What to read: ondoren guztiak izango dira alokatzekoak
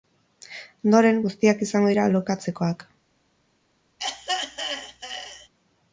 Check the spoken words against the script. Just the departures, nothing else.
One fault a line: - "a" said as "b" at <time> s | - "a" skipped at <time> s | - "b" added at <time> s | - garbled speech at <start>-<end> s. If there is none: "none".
none